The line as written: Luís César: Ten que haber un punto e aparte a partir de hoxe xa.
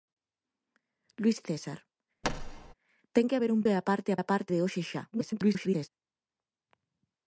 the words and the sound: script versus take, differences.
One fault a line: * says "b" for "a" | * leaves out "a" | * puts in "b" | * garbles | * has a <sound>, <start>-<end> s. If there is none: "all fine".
* has a thud, 2.2-2.7 s
* leaves out "punto"
* says "aparte" for "partir"
* garbles